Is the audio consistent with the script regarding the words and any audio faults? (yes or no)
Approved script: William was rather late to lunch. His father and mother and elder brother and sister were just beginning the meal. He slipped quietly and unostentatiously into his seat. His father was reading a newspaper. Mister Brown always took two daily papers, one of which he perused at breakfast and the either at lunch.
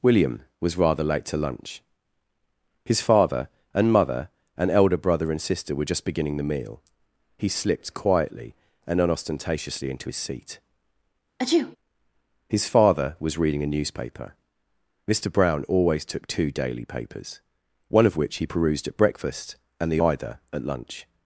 no